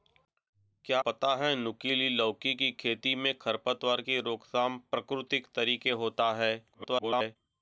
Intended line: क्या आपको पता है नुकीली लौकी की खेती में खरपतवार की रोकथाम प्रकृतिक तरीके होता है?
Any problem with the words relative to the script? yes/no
yes